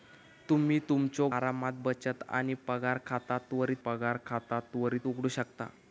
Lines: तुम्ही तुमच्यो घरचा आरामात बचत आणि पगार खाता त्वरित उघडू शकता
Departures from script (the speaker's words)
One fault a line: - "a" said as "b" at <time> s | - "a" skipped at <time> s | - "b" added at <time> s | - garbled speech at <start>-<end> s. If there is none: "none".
- "घरचा" skipped at 1.3 s
- "पगार खाता त्वरित" added at 3.9 s